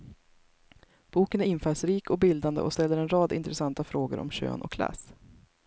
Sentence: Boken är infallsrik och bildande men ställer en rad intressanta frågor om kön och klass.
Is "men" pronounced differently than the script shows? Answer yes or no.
yes